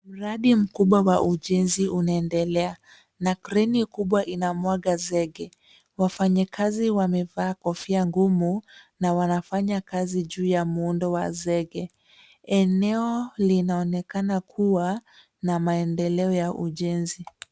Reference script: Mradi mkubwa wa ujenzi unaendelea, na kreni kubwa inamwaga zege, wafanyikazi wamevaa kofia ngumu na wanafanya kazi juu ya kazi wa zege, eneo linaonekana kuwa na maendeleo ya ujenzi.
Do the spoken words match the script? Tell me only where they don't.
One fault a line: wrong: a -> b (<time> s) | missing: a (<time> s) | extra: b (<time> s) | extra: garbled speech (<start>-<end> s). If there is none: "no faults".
wrong: kazi -> muundo (10.6 s)